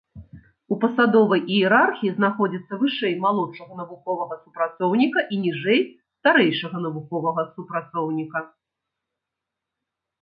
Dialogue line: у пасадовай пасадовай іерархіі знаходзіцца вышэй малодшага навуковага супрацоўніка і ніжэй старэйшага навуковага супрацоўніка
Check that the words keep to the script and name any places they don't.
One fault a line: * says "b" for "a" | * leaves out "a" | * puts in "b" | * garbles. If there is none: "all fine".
* leaves out "пасадовай"